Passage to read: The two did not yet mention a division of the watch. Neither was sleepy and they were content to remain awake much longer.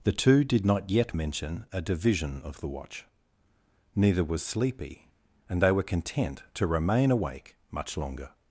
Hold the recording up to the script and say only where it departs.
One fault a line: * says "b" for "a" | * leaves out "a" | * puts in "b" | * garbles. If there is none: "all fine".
all fine